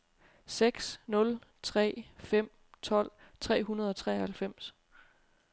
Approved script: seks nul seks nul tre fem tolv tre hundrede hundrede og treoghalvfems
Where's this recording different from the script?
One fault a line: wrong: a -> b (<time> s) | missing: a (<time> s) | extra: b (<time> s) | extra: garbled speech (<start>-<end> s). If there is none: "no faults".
missing: seks nul (1.4 s)
missing: hundrede (3.9 s)